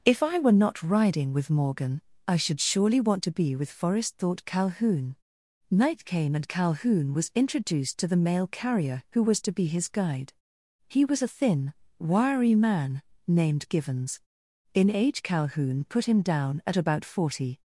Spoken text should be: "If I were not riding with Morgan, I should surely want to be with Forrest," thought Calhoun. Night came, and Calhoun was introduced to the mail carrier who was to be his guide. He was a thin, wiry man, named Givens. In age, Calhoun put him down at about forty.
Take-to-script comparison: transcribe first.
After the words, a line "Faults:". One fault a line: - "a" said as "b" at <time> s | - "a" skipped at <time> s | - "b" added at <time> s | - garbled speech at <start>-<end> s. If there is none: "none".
"If I were not riding with Morgan, I should surely want to be with Forrest," thought Calhoun. Night came, and Calhoun was introduced to the mail carrier who was to be his guide. He was a thin, wiry man, named Givens. In age, Calhoun put him down at about forty.
Faults:
none